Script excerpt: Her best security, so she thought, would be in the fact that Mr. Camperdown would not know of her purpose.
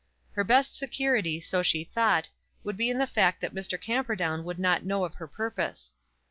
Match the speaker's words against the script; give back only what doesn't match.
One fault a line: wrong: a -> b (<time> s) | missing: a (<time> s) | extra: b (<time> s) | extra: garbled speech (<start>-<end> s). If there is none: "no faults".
no faults